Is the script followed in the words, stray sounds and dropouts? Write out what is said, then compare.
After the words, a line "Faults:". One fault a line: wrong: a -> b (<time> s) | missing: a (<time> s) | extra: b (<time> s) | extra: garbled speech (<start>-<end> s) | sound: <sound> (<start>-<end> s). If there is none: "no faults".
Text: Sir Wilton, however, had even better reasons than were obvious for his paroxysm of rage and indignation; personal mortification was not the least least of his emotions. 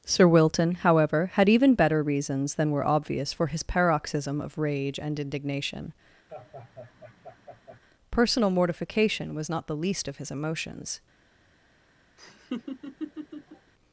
Sir Wilton, however, had even better reasons than were obvious for his paroxysm of rage and indignation; personal mortification was not the least of his emotions.
Faults:
sound: laugh (6.3-7.8 s)
missing: least (10.1 s)
sound: laugh (12.2-13.7 s)